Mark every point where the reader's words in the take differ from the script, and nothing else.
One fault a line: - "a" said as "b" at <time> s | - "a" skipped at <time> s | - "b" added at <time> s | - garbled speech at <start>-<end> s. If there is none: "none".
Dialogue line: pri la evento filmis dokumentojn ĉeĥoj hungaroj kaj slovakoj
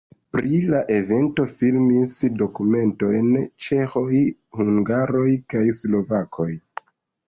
none